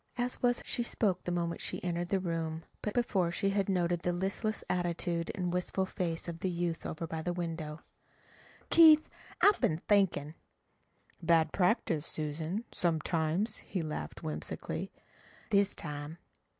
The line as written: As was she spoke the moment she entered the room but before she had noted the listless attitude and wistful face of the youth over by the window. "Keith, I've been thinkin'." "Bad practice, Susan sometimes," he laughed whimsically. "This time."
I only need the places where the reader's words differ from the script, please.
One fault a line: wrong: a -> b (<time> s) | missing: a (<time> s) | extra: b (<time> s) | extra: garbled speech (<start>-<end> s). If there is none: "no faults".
no faults